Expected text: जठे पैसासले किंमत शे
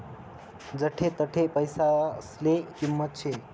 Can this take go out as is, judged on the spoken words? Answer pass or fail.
fail